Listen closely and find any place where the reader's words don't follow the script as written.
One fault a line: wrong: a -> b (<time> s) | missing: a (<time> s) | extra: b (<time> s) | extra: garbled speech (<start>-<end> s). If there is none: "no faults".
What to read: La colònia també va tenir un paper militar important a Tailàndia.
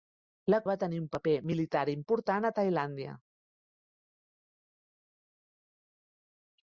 missing: colònia també (0.6 s)